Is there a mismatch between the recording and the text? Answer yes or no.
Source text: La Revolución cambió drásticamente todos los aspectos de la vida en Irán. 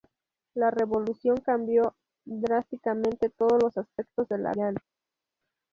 yes